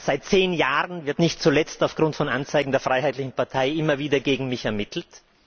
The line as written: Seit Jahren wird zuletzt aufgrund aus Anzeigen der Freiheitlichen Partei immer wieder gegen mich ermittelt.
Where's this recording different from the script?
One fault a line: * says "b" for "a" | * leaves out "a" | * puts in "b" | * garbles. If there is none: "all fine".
* puts in "zehn"
* puts in "nicht"
* says "von" for "aus"